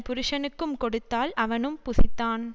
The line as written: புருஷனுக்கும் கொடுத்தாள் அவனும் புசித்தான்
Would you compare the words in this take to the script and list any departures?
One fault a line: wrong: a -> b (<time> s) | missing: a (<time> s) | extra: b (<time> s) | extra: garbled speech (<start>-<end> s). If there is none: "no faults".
no faults